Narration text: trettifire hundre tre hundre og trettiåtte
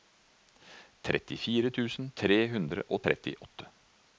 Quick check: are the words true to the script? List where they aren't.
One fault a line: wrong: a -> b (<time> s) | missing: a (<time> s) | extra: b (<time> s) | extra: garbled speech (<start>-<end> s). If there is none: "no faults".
wrong: hundre -> tusen (1.8 s)